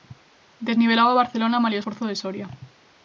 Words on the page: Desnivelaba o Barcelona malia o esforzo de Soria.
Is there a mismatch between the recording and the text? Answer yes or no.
no